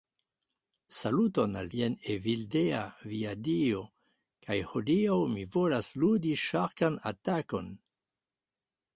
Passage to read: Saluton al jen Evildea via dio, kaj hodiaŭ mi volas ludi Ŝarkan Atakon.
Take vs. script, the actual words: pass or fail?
pass